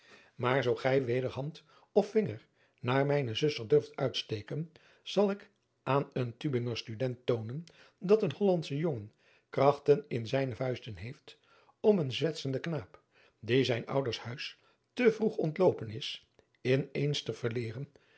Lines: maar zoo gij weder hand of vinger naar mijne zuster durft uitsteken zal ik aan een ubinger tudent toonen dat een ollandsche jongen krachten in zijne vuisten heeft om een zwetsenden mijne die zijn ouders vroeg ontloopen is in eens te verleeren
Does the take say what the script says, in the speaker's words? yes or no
no